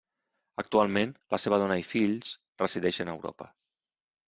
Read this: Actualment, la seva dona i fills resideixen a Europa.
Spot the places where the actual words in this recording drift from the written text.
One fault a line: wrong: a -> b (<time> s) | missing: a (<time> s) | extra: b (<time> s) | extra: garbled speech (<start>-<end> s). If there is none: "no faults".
no faults